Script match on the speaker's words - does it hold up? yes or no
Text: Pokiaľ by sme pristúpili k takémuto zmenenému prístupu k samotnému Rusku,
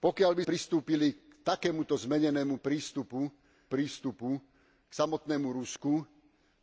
no